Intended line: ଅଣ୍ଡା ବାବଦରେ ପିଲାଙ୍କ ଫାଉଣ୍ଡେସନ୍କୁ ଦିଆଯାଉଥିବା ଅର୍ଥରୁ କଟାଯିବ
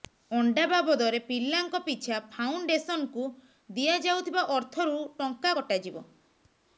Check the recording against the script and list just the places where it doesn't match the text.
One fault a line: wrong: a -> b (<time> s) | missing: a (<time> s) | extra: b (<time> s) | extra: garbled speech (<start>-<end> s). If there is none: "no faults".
extra: ପିଛା (1.8 s)
extra: ଟଙ୍କା (5.2 s)